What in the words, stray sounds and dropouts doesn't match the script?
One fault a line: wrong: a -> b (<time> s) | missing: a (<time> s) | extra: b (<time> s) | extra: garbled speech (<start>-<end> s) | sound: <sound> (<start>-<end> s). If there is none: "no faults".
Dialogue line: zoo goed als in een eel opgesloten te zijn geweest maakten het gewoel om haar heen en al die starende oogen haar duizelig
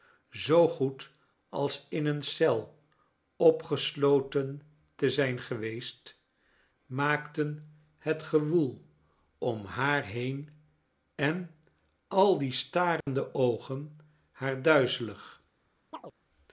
sound: dropout (13.0-13.1 s)
sound: chirp (15.9-16.1 s)